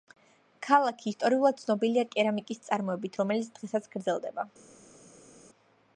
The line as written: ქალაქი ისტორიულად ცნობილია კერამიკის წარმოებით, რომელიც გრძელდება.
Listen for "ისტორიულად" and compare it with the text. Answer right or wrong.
right